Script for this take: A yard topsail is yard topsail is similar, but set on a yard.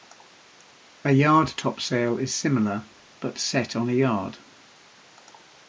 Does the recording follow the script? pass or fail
fail